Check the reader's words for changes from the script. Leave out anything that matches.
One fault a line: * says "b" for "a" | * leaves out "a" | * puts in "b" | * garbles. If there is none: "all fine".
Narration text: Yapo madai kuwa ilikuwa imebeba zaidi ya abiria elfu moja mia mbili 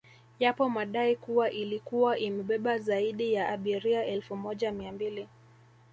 all fine